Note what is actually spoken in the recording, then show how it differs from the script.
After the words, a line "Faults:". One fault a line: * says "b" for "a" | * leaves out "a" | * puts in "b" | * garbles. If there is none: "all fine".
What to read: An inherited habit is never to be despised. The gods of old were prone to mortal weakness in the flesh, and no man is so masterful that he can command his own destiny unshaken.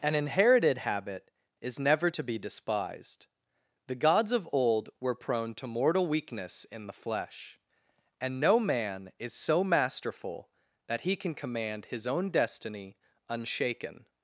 An inherited habit is never to be despised. The gods of old were prone to mortal weakness in the flesh, and no man is so masterful that he can command his own destiny unshaken.
Faults:
all fine